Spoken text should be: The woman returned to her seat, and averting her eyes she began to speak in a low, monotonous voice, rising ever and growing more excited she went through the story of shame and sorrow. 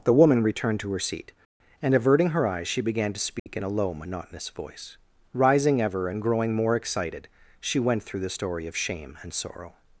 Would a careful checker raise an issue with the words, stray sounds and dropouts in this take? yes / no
yes